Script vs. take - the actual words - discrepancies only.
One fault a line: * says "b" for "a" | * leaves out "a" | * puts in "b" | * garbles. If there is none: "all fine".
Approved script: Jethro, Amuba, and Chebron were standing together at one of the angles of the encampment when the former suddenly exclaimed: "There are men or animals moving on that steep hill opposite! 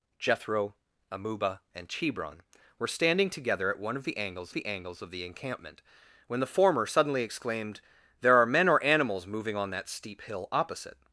* puts in "the angles"